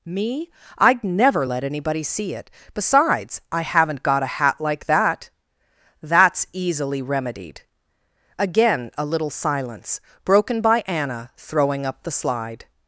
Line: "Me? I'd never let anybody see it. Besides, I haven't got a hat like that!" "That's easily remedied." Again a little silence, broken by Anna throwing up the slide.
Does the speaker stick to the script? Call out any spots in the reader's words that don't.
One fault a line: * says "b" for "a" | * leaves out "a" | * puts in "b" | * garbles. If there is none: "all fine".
all fine